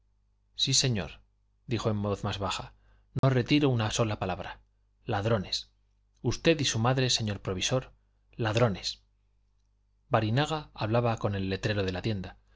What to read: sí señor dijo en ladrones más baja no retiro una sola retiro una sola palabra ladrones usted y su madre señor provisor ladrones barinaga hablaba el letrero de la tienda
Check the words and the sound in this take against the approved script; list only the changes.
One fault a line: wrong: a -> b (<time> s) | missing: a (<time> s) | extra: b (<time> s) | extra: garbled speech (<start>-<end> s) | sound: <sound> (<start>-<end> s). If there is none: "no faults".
wrong: ladrones -> voz (2.0 s)
sound: dropout (3.2-3.2 s)
missing: retiro una sola (4.2 s)
extra: con (11.2 s)